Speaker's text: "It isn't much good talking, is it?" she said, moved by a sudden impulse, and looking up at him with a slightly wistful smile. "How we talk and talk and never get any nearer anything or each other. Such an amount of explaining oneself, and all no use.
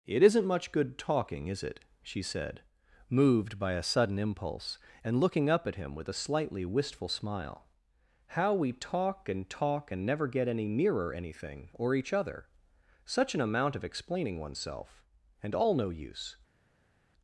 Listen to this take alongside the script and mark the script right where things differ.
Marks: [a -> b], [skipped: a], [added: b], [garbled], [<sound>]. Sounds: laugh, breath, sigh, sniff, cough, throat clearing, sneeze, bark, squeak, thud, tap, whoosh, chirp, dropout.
"It isn't much good talking, is it?" she said, moved by a sudden impulse, and looking up at him with a slightly wistful smile. "How we talk and talk and never get any nearer anything or each other. Such an amount of explaining oneself, and all no use.